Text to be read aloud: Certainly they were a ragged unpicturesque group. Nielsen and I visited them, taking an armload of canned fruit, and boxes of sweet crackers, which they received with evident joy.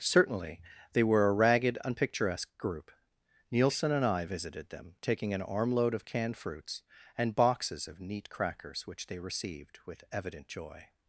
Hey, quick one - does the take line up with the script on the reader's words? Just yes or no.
no